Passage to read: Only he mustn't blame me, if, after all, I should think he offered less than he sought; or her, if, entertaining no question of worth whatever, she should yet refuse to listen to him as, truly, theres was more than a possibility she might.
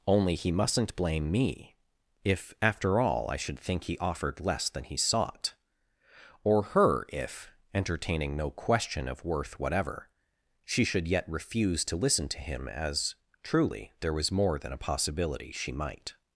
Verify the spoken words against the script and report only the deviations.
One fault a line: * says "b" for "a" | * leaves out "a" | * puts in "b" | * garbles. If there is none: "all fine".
* says "there" for "theres"